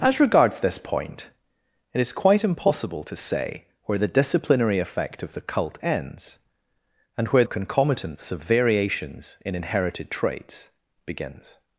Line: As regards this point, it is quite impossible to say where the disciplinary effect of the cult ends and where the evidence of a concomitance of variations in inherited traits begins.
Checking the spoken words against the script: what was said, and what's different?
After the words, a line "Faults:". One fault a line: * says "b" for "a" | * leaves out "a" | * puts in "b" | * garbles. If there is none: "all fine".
As regards this point, it is quite impossible to say where the disciplinary effect of the cult ends and where a concomitance of variations in inherited traits begins.
Faults:
* leaves out "the evidence of"